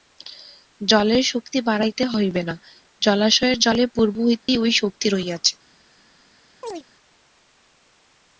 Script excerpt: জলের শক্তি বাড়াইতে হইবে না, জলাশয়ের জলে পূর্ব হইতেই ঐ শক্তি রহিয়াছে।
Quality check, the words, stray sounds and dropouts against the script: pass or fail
fail